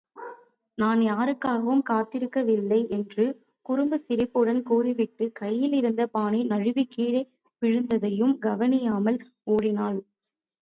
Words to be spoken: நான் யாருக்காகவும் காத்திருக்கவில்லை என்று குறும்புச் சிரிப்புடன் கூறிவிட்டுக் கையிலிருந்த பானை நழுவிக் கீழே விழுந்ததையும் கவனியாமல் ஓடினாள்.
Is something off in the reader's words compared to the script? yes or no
no